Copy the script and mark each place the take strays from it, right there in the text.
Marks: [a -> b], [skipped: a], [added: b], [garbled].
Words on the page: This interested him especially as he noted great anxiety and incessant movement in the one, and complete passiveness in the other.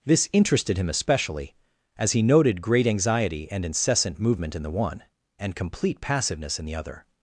This interested him especially as he noted great anxiety and incessant movement in the one, and complete passiveness in the other.